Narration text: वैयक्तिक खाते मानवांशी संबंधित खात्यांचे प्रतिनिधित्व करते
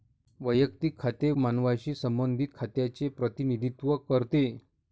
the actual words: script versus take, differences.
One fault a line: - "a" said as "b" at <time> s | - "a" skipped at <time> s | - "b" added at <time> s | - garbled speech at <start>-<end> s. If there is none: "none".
none